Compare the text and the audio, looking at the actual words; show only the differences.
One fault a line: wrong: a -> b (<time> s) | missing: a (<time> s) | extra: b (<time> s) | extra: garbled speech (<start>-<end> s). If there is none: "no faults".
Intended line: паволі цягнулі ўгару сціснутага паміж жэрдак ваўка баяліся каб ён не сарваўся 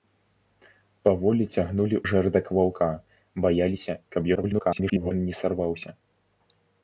missing: ўгару сціснутага паміж (2.0 s)
extra: garbled speech (4.3-5.1 s)